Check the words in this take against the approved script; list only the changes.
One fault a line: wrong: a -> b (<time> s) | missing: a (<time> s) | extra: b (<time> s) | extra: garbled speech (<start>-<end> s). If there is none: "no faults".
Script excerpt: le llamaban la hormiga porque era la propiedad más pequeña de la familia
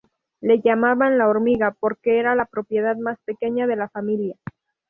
no faults